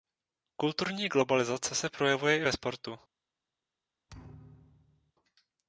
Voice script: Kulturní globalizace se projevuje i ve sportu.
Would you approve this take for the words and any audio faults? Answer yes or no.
no